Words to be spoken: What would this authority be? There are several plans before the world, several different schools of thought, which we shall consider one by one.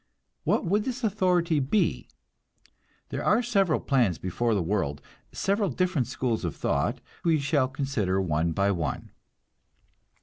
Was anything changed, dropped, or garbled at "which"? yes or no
yes